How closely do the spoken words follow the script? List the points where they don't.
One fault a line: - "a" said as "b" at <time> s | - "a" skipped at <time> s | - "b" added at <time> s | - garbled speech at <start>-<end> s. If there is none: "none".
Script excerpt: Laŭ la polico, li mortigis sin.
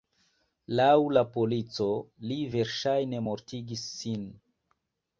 - "verŝajne" added at 2.5 s